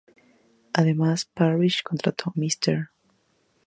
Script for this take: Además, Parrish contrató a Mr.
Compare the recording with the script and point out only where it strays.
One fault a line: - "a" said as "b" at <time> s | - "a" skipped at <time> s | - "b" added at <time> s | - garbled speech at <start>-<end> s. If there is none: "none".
- "a" skipped at 2.3 s